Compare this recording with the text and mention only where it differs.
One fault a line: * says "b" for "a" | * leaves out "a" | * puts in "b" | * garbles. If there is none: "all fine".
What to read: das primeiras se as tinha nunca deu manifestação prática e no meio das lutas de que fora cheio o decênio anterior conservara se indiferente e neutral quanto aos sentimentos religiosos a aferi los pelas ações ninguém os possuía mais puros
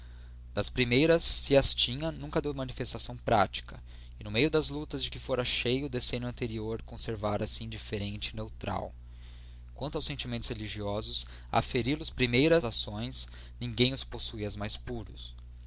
* says "primeiras" for "pelas"